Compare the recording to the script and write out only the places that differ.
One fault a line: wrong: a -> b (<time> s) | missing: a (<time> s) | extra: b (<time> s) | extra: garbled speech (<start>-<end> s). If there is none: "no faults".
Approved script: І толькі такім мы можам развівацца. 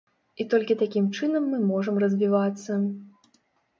extra: чынам (1.2 s)